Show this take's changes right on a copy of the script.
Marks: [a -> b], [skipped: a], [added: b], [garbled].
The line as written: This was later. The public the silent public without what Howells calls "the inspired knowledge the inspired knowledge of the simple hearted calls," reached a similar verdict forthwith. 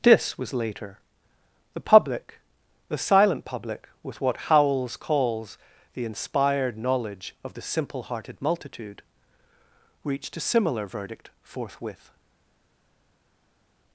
This was later. The public the silent public [without -> with] what Howells calls "the inspired knowledge [skipped: the inspired knowledge] of the simple hearted [calls," -> multitude] reached a similar verdict forthwith.